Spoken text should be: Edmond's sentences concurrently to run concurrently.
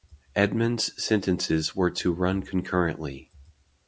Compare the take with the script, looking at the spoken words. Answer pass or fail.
fail